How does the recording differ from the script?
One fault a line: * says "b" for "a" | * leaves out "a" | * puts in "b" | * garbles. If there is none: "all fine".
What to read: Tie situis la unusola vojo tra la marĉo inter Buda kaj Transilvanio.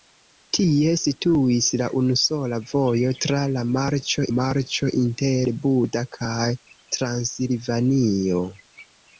* puts in "marĉo"